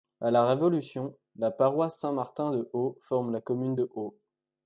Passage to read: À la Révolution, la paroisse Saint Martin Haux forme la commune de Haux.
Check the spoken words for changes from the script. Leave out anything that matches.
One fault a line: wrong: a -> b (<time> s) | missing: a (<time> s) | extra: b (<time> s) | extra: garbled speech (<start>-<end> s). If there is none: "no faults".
extra: de (2.5 s)